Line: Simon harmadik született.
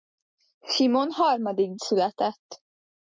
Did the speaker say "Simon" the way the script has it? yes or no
yes